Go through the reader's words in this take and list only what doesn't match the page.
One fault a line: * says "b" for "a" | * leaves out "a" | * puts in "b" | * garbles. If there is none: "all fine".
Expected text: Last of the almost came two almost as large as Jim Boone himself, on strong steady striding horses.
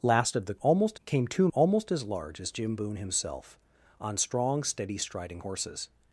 all fine